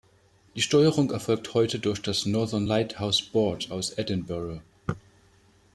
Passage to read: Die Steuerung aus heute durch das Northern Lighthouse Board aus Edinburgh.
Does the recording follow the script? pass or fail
fail